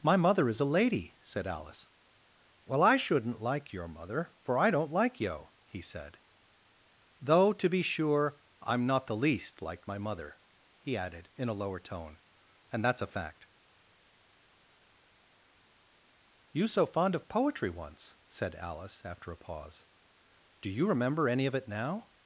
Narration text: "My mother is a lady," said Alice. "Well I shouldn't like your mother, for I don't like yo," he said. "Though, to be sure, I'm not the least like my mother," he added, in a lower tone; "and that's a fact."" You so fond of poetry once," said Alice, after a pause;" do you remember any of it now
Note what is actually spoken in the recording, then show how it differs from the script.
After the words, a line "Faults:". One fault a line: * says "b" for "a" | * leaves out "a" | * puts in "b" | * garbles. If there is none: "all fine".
"My mother is a lady," said Alice. "Well I shouldn't like your mother, for I don't like yo," he said. "Though, to be sure, I'm not the least like my mother," he added, in a lower tone; "and that's a fact."" You so fond of poetry once," said Alice, after a pause;" do you remember any of it now
Faults:
all fine